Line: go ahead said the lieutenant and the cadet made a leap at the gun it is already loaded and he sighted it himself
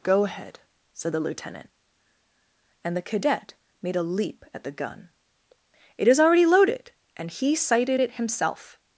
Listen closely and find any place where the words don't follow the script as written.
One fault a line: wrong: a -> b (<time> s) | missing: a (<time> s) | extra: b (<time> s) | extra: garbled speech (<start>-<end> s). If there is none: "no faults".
no faults